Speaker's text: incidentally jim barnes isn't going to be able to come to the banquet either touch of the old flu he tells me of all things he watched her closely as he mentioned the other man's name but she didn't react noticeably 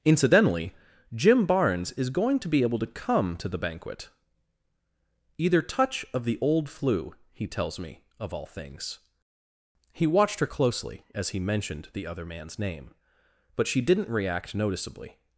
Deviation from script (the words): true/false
true